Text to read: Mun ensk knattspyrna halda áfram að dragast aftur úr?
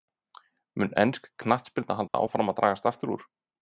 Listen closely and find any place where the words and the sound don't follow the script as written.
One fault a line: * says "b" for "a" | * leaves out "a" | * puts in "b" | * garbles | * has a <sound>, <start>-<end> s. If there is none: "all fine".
* has a dropout, 2.1-2.1 s